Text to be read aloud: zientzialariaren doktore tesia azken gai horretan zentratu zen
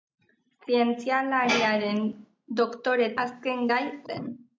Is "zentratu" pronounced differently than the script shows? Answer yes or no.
yes